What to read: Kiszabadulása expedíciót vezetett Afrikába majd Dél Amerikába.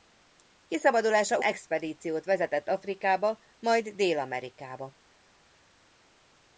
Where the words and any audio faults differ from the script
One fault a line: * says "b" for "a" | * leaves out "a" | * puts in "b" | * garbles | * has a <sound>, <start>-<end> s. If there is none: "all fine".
all fine